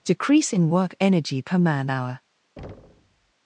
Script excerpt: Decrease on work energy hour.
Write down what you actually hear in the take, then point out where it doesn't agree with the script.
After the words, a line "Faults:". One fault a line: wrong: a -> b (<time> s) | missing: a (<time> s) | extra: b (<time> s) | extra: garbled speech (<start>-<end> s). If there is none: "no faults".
Decrease in work energy per man hour.
Faults:
wrong: on -> in (0.5 s)
extra: per man (1.4 s)